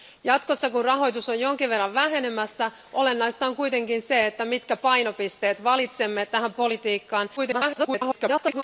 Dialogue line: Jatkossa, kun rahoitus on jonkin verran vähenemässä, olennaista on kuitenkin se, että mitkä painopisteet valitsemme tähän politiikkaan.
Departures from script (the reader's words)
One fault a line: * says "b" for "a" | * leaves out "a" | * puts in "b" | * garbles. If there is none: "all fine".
* garbles